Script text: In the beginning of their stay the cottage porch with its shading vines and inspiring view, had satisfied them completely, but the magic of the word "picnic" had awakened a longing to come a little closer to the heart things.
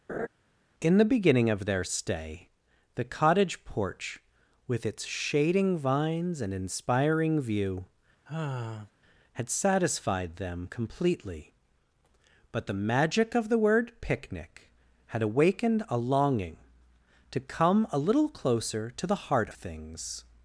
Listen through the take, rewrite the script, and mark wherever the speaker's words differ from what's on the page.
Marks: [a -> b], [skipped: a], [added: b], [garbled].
In the beginning of their stay the cottage porch with its shading vines and inspiring view, had satisfied them completely, but the magic of the word "picnic" had awakened a longing to come a little closer to the heart things.